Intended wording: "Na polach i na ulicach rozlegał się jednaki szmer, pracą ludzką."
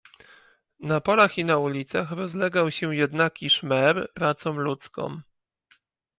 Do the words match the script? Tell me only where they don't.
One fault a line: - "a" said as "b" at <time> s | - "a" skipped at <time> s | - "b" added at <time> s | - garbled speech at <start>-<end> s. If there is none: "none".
none